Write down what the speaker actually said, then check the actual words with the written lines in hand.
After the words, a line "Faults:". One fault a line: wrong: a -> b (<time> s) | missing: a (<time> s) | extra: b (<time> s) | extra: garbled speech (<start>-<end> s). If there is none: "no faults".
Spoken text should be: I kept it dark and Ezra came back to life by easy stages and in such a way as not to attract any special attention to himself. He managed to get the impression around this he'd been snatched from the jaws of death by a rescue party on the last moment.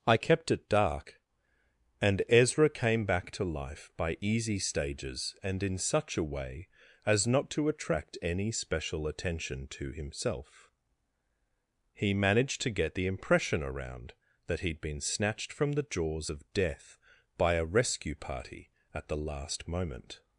I kept it dark and Ezra came back to life by easy stages and in such a way as not to attract any special attention to himself. He managed to get the impression around that he'd been snatched from the jaws of death by a rescue party at the last moment.
Faults:
wrong: this -> that (14.5 s)
wrong: on -> at (18.9 s)